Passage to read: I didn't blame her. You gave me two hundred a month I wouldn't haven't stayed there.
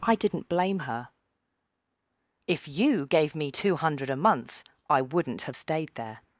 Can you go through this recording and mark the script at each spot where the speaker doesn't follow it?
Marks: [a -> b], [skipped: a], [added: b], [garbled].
I didn't blame her. [added: If] You gave me two hundred a month I wouldn't [haven't -> have] stayed there.